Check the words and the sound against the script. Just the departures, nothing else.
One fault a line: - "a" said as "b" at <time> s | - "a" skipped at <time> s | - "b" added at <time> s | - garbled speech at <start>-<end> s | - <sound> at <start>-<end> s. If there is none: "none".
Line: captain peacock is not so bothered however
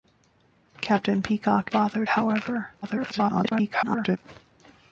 - "is not so" skipped at 1.7 s
- garbled speech at 2.8-4.2 s